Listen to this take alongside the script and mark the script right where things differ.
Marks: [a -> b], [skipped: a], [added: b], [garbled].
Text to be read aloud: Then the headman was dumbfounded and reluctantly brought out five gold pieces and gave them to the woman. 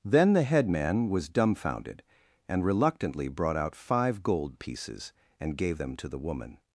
Then the headman was dumbfounded and reluctantly brought out five gold pieces and gave them to the woman.